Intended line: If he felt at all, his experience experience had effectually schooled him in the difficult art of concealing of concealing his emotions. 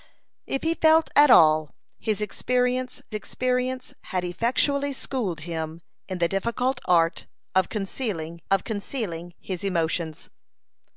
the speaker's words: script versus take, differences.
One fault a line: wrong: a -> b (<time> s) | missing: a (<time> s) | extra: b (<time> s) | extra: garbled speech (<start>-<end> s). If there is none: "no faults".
no faults